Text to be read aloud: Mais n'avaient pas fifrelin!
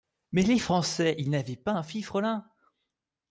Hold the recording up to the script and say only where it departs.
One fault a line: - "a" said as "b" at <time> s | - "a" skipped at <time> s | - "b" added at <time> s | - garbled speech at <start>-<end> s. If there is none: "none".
- "les Français ils" added at 0.4 s
- "un" added at 1.7 s